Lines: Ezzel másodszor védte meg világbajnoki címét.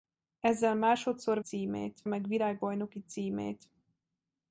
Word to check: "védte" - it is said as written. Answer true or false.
false